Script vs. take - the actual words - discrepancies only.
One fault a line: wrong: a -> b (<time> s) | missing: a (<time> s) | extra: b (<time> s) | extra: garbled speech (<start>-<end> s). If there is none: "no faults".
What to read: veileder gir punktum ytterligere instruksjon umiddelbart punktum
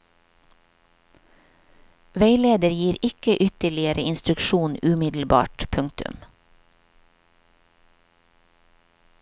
wrong: punktum -> ikke (3.0 s)